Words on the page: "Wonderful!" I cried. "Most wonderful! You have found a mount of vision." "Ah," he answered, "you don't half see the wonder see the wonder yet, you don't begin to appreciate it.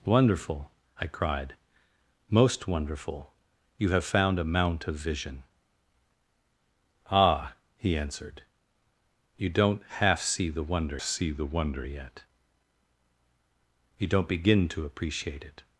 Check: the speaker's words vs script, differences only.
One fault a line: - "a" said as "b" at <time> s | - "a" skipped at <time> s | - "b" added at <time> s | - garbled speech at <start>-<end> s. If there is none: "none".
none